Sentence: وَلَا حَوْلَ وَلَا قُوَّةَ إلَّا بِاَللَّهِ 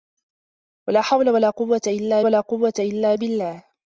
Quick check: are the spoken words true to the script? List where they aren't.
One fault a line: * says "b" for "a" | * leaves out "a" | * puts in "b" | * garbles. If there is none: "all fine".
* puts in "وَلَا قُوَّةَ إلَّا"